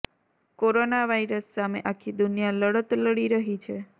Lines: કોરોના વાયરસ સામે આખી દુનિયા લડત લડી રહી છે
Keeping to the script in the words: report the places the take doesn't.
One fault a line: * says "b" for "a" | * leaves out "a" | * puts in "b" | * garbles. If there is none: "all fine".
all fine